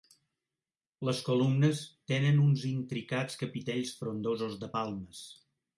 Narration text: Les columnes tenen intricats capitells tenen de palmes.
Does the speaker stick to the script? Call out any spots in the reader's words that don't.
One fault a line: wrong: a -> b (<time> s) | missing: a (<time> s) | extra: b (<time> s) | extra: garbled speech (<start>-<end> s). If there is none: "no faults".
extra: uns (2.5 s)
wrong: tenen -> frondosos (4.0 s)